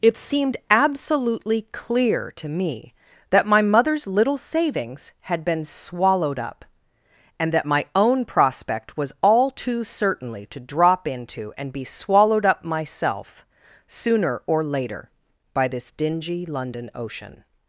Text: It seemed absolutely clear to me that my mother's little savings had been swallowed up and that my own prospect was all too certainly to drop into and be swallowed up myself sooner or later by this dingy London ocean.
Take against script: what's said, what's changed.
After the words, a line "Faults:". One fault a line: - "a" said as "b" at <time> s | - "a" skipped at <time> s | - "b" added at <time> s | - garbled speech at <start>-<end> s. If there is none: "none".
It seemed absolutely clear to me that my mother's little savings had been swallowed up and that my own prospect was all too certainly to drop into and be swallowed up myself sooner or later by this dingy London ocean.
Faults:
none